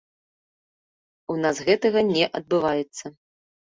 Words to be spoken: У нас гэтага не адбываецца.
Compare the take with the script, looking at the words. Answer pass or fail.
pass